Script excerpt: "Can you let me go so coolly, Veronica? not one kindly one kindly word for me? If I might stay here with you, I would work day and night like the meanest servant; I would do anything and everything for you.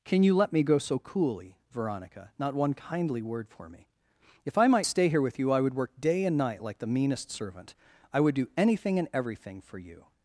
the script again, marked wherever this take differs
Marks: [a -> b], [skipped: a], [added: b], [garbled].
"Can you let me go so coolly, Veronica? not one kindly [skipped: one kindly] word for me? If I might stay here with you, I would work day and night like the meanest servant; I would do anything and everything for you.